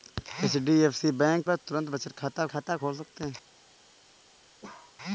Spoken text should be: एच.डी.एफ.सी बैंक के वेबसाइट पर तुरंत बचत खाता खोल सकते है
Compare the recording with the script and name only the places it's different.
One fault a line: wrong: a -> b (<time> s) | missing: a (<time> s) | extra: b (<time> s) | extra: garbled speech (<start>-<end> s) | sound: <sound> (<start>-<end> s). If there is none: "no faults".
missing: के वेबसाइट (1.4 s)
extra: खाता (2.5 s)
sound: bark (4.6-5.0 s)